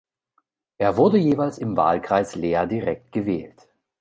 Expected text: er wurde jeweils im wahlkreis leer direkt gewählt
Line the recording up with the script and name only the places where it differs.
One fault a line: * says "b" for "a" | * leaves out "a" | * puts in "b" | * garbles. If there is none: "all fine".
all fine